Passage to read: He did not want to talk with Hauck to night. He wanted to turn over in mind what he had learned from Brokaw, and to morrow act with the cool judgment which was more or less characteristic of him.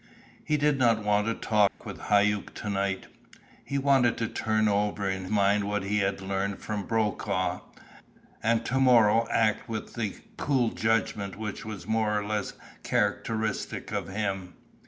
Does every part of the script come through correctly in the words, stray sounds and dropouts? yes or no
no